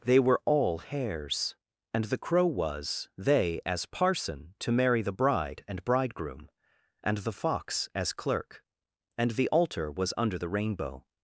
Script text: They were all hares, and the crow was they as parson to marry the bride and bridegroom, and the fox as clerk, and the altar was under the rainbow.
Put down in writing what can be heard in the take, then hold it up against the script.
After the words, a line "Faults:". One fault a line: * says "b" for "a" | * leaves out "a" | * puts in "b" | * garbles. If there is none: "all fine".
They were all hares, and the crow was they as parson to marry the bride and bridegroom, and the fox as clerk, and the altar was under the rainbow.
Faults:
all fine